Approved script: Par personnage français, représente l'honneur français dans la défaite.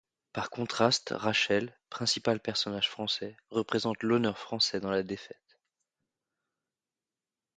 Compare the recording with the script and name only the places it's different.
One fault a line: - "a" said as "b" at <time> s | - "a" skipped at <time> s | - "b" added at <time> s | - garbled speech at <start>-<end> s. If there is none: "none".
- "contraste Rachel principal" added at 0.5 s